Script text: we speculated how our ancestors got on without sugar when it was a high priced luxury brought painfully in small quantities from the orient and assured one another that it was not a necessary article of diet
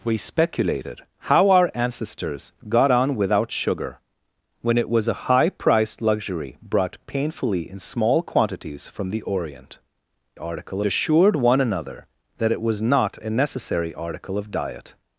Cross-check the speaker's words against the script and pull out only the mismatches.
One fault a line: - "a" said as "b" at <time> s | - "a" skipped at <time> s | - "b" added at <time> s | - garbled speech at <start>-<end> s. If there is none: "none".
- "and" said as "article" at 10.4 s